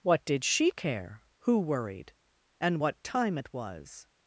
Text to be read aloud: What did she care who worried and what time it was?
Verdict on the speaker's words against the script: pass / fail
pass